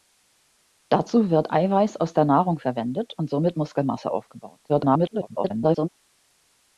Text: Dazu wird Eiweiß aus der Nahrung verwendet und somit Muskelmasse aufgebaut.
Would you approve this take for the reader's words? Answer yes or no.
no